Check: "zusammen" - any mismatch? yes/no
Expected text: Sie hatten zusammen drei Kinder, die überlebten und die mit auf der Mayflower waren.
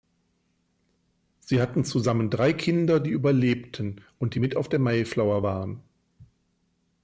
no